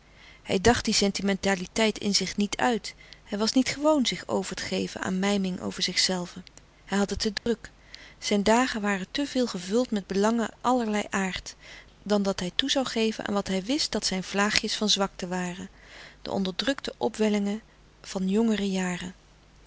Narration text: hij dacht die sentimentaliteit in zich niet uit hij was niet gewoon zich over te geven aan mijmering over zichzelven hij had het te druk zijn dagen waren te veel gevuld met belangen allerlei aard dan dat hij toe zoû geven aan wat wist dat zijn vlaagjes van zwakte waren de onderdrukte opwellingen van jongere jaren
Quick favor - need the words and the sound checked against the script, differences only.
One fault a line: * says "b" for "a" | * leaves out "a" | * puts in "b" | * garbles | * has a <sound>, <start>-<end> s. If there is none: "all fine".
* has a dropout, 7.4-7.5 s
* puts in "hij"